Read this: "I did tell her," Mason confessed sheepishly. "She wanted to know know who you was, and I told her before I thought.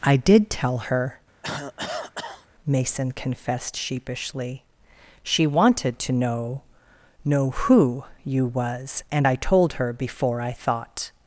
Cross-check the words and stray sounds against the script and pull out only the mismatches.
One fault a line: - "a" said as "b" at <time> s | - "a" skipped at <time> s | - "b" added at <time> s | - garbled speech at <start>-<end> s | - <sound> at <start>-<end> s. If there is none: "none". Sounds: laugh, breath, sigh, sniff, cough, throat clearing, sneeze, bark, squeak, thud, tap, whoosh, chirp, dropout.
- cough at 1.4-2.5 s